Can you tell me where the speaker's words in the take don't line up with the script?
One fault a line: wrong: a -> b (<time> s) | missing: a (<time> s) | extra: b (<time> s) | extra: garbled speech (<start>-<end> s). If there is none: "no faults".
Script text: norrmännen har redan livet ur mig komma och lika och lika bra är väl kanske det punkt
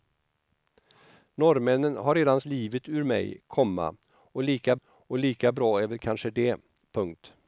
no faults